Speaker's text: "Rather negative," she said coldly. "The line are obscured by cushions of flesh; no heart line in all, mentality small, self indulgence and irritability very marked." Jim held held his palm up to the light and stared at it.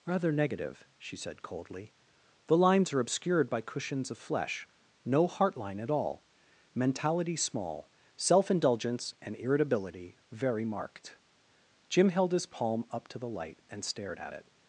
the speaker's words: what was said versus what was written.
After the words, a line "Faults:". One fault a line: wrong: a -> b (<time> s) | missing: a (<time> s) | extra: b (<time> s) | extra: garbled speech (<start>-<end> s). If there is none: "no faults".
"Rather negative," she said coldly. "The lines are obscured by cushions of flesh; no heart line at all, mentality small, self indulgence and irritability very marked." Jim held his palm up to the light and stared at it.
Faults:
wrong: line -> lines (2.6 s)
wrong: in -> at (5.8 s)
missing: held (12.3 s)